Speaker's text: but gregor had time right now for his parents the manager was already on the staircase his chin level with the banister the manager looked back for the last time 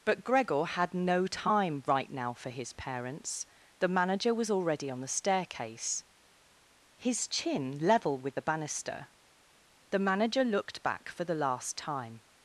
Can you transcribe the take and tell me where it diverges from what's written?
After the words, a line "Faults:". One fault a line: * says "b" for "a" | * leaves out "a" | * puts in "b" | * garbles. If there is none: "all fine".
but gregor had no time right now for his parents the manager was already on the staircase his chin level with the banister the manager looked back for the last time
Faults:
* puts in "no"